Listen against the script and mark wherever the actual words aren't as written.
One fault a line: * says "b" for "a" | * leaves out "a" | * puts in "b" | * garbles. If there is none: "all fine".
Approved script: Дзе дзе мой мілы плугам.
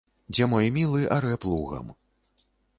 * leaves out "дзе"
* puts in "арэ"